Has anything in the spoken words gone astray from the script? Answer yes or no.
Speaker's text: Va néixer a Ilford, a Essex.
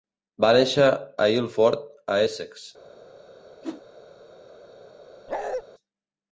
no